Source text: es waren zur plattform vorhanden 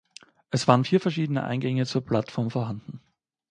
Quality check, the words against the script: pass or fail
fail